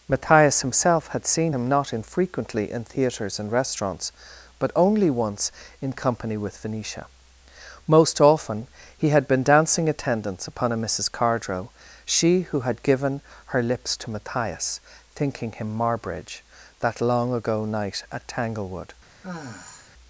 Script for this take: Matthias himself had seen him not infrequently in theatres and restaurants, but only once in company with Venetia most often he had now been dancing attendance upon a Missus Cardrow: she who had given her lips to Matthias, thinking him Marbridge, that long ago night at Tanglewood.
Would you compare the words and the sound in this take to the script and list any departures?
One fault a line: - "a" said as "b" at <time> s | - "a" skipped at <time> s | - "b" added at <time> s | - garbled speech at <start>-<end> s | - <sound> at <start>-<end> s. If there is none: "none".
- "now" skipped at 9.3 s
- sigh at 19.2-19.9 s